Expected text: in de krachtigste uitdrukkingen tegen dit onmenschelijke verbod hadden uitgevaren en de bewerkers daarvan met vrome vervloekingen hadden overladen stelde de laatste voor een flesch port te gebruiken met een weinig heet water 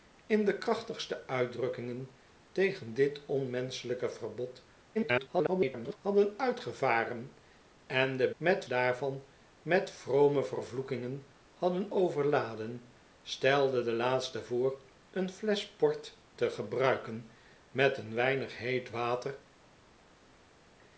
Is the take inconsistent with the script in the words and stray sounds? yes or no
yes